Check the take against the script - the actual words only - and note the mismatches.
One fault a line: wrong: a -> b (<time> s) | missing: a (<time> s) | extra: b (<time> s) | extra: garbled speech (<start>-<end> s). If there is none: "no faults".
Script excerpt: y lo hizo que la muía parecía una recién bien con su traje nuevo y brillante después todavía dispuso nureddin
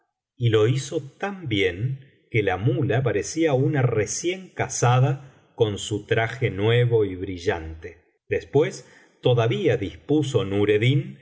extra: tan bien (1.2 s)
wrong: bien -> casada (4.5 s)